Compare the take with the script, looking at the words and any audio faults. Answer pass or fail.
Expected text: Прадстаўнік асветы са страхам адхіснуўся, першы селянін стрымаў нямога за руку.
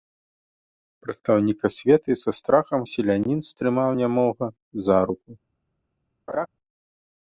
fail